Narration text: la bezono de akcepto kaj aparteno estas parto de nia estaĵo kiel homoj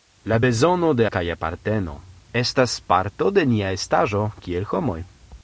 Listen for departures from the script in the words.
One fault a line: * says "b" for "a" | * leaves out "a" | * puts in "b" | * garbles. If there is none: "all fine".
* leaves out "akcepto"